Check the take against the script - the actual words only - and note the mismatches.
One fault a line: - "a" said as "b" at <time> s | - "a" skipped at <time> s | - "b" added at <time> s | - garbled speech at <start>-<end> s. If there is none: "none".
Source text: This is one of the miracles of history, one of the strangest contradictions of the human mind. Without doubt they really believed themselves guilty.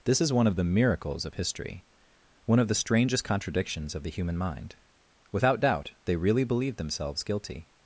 none